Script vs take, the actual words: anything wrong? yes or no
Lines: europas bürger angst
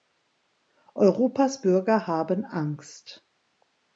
yes